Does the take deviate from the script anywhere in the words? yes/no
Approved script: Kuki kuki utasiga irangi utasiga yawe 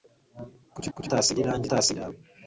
no